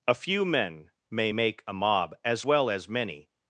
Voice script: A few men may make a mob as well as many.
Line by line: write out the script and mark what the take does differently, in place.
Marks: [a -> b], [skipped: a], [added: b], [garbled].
A few men may make a mob as well as many.